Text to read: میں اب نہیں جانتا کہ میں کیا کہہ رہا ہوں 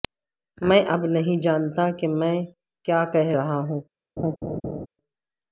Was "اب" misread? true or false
false